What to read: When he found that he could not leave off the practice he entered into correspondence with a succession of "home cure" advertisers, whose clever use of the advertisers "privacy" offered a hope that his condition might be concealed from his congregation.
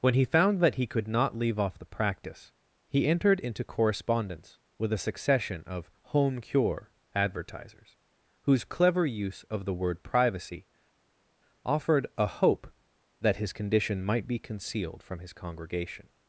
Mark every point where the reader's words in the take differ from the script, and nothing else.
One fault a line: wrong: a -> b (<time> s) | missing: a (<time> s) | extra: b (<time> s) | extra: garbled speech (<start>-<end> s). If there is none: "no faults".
wrong: advertisers -> word (9.7 s)